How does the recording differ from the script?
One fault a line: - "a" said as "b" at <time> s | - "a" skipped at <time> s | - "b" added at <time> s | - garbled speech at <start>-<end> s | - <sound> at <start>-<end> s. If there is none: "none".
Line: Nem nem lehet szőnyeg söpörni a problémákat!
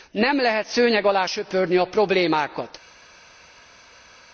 - "nem" skipped at 0.4 s
- "alá" added at 1.0 s